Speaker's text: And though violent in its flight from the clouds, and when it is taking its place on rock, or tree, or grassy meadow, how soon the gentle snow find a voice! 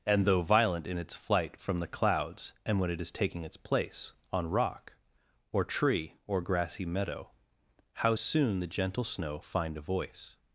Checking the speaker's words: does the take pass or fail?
pass